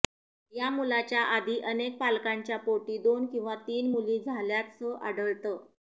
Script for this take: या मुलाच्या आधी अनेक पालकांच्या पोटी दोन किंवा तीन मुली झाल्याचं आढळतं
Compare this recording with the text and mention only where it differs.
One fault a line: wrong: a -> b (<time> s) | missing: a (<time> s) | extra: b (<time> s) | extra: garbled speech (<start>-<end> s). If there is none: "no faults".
no faults